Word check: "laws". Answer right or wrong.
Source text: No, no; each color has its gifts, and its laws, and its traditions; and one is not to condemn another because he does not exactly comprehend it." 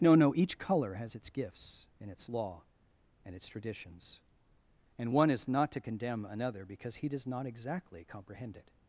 wrong